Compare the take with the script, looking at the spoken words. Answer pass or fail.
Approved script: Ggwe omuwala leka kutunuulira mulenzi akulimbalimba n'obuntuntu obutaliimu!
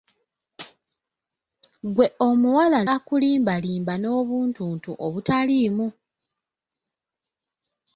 fail